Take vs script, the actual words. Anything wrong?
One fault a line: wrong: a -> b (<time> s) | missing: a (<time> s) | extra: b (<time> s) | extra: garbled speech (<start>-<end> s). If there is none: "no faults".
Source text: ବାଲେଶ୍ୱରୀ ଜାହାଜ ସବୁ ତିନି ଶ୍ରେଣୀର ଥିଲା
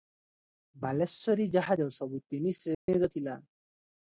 no faults